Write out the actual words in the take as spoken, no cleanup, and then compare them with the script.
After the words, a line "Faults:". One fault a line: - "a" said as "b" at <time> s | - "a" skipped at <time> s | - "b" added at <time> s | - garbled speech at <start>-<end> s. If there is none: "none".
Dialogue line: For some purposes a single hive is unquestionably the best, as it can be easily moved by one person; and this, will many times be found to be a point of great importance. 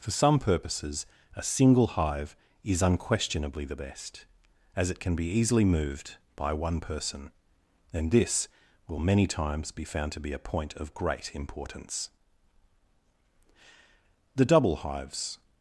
For some purposes a single hive is unquestionably the best, as it can be easily moved by one person; and this, will many times be found to be a point of great importance. The double hives
Faults:
- "The double hives" added at 14.3 s